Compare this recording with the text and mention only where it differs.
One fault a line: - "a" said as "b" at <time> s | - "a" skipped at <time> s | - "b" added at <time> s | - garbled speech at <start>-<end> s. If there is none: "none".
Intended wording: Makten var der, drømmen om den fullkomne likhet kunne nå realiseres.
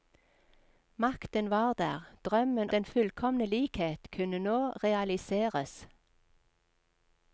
- "om" skipped at 2.7 s